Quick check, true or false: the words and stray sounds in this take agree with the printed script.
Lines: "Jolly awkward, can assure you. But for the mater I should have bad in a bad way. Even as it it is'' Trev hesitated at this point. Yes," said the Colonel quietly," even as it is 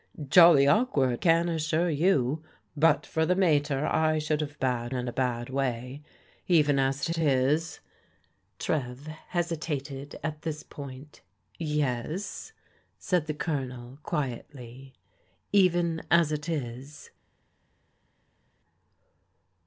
true